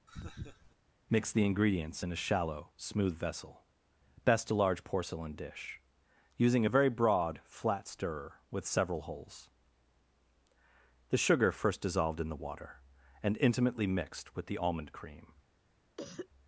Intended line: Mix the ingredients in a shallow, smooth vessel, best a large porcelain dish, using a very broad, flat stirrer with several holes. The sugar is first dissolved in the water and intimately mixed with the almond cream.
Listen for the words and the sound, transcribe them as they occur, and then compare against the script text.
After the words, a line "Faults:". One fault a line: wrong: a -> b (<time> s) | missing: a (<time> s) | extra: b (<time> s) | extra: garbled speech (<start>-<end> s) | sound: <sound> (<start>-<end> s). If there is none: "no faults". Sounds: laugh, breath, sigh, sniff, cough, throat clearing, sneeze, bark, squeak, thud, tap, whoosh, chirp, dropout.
Mix the ingredients in a shallow, smooth vessel, best a large porcelain dish, using a very broad, flat stirrer with several holes. The sugar first dissolved in the water and intimately mixed with the almond cream.
Faults:
sound: laugh (0.1-0.8 s)
missing: is (11.5 s)
sound: cough (16.0-16.3 s)